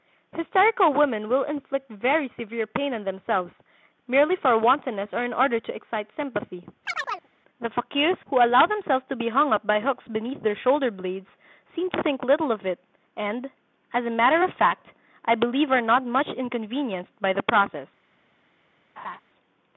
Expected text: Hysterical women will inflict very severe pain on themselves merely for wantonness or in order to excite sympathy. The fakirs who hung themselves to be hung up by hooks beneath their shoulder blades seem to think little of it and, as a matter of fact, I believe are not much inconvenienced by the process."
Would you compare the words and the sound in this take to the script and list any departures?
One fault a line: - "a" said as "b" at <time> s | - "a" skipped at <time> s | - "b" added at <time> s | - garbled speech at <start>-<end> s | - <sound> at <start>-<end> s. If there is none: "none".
- chirp at 6.8-7.3 s
- "hung" said as "allow" at 8.4 s
- laugh at 19.0-19.2 s